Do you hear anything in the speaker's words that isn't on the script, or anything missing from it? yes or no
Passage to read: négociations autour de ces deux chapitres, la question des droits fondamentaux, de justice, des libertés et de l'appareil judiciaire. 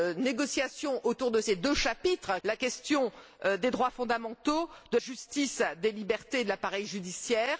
no